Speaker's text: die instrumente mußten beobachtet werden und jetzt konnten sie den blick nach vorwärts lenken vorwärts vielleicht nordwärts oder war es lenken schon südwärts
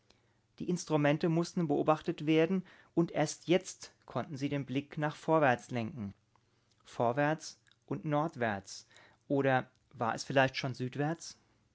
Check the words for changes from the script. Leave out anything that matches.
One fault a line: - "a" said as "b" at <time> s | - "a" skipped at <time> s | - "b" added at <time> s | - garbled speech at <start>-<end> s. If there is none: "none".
- "erst" added at 3.1 s
- "vielleicht" said as "und" at 7.9 s
- "lenken" said as "vielleicht" at 10.2 s